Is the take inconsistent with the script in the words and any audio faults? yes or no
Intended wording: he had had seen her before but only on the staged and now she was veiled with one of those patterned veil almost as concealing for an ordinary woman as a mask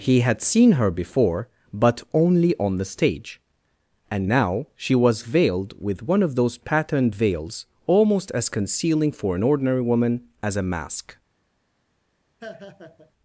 yes